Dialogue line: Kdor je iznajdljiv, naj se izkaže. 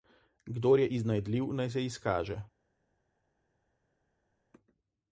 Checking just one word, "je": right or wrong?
right